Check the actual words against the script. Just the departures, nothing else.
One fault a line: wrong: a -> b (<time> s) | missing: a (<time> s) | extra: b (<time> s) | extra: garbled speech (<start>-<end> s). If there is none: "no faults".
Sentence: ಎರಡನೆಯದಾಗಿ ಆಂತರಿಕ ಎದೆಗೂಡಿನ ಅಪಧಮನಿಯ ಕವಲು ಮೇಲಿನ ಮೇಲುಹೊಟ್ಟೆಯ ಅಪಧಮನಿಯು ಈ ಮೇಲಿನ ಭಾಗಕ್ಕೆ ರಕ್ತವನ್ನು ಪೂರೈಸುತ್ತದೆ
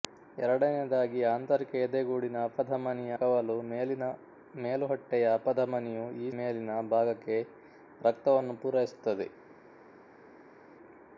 no faults